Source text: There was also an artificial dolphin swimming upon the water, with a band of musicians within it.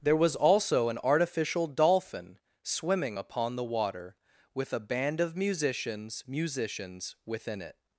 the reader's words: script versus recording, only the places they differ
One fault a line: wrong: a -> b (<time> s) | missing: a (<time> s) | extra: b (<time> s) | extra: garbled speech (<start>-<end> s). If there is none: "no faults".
extra: musicians (6.3 s)